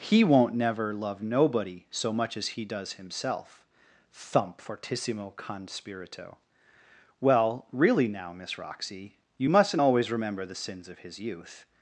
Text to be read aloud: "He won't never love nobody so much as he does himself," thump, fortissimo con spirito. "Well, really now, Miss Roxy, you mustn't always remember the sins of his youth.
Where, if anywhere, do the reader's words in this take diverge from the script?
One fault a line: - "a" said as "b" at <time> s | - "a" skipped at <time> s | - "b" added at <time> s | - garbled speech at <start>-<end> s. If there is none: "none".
none